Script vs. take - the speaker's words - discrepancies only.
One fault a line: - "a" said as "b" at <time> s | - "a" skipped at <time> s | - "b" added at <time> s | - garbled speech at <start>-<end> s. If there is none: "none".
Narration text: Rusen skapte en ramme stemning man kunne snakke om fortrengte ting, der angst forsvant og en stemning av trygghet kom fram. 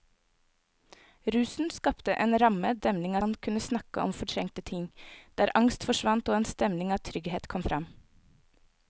none